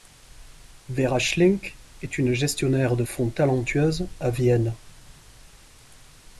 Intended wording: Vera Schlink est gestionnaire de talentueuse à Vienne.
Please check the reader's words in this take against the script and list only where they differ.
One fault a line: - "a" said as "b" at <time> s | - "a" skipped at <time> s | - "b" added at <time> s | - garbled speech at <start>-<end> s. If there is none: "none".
- "une" added at 2.2 s
- "fonds" added at 3.0 s